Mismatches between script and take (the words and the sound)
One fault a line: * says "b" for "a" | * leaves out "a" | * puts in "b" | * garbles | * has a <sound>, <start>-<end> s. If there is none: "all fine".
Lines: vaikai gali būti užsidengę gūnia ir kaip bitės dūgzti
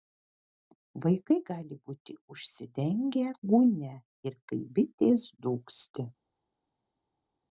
all fine